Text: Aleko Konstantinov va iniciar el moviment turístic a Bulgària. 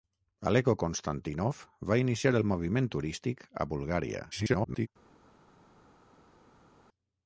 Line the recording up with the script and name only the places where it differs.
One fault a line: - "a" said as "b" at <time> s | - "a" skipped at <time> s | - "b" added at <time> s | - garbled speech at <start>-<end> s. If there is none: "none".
- garbled speech at 4.3-4.9 s